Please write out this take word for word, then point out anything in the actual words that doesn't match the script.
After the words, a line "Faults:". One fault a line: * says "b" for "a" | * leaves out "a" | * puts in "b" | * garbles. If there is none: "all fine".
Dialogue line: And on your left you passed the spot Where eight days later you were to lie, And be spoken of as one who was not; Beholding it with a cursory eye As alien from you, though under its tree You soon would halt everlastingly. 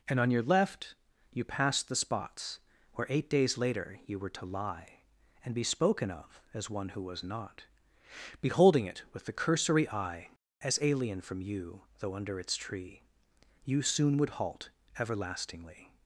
And on your left you passed the spots Where eight days later you were to lie, And be spoken of as one who was not; Beholding it with the cursory eye As alien from you, though under its tree You soon would halt everlastingly.
Faults:
* says "spots" for "spot"
* says "the" for "a"